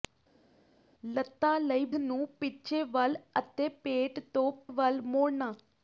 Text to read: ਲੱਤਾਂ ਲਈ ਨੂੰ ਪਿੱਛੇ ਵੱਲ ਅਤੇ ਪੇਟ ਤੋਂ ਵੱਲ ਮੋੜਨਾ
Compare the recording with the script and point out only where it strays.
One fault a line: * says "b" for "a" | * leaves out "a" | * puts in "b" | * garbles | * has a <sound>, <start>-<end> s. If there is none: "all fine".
all fine